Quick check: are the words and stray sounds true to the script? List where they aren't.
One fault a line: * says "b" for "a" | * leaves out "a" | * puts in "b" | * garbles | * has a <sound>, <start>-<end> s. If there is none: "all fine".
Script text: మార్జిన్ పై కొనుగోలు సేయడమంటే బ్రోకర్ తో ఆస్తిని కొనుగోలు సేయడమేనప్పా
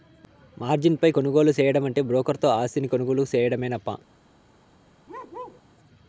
* has a bark, 5.1-5.6 s